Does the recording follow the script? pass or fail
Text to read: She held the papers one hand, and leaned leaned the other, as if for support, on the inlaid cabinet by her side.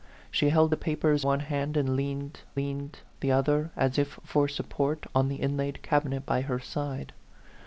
pass